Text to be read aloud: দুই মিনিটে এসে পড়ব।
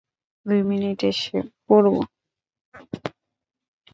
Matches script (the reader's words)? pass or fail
pass